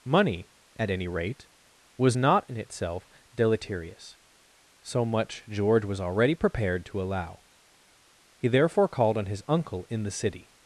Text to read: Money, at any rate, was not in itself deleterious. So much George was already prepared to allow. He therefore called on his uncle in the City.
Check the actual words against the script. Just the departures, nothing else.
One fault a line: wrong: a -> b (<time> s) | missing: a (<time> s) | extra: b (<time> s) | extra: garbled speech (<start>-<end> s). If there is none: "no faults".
no faults